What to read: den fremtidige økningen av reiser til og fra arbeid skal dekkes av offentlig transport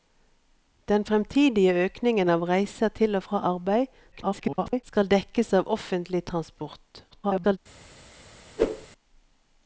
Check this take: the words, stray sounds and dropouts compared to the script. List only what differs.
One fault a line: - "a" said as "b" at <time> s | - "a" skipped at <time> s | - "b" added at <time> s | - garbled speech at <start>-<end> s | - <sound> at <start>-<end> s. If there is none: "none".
- garbled speech at 4.1-4.8 s
- garbled speech at 7.1-7.6 s
- whoosh at 8.6-8.9 s